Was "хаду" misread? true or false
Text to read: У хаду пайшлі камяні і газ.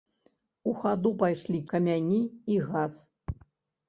false